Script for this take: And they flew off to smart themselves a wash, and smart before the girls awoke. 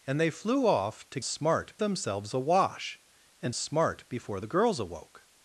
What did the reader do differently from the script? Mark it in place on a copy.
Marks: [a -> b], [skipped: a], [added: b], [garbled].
And they flew off to smart themselves a wash, and smart before the girls awoke.